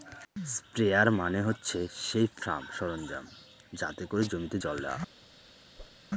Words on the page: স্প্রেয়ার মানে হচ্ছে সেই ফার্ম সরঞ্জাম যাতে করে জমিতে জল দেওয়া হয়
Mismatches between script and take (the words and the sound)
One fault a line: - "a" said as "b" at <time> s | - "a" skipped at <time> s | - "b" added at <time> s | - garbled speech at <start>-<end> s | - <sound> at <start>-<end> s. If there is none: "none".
- whoosh at 5.8-6.0 s